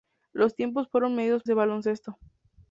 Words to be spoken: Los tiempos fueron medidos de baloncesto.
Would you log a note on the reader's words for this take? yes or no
no